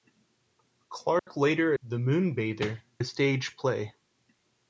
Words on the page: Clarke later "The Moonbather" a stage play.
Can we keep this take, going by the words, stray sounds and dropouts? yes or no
no